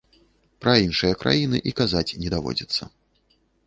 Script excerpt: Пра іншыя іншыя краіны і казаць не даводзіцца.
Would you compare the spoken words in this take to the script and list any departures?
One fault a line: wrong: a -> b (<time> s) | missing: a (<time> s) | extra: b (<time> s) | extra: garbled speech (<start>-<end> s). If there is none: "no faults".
missing: іншыя (1.2 s)